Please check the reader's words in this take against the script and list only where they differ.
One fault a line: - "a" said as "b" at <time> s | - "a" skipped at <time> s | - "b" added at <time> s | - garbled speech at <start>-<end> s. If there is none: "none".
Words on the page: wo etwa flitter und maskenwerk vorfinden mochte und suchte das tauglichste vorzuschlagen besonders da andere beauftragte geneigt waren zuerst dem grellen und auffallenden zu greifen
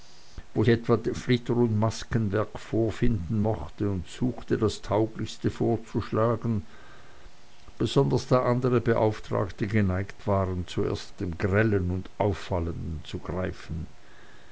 none